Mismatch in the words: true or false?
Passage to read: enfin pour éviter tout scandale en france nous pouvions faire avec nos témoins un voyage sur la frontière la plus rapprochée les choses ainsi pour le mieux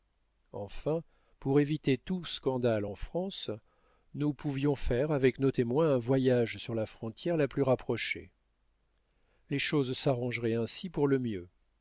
true